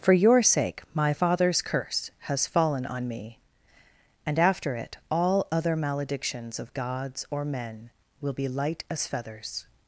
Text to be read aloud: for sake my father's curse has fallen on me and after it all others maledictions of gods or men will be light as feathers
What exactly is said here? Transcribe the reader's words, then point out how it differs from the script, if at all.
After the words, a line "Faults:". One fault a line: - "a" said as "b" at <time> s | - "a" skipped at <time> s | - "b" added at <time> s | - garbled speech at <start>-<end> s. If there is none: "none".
for your sake my father's curse has fallen on me and after it all other maledictions of gods or men will be light as feathers
Faults:
- "your" added at 0.1 s
- "others" said as "other" at 5.5 s